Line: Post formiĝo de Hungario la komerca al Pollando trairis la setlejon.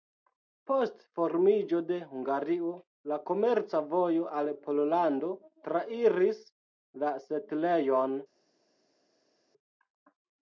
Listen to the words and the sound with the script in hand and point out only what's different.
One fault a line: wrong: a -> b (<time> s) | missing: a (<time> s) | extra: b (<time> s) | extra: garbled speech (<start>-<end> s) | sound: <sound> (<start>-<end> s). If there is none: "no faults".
extra: vojo (3.9 s)